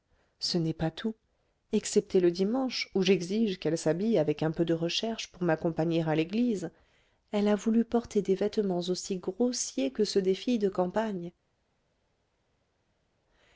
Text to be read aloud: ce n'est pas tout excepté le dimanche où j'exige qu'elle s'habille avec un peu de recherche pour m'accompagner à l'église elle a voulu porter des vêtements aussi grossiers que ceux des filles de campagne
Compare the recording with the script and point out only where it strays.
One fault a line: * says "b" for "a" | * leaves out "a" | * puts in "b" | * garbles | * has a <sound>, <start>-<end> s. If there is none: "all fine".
all fine